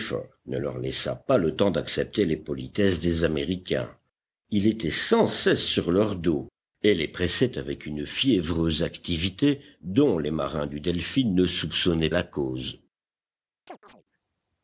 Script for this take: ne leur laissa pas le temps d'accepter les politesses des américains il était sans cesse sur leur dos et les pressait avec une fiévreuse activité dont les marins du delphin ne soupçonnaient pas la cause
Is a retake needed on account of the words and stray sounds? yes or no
yes